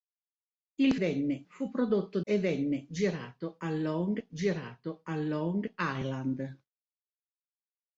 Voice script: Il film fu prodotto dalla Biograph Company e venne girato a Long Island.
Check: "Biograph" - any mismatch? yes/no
yes